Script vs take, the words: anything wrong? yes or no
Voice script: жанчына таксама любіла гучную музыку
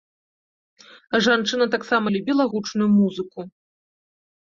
no